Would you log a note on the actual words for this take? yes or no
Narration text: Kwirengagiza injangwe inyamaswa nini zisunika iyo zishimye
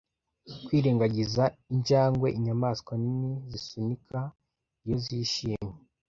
no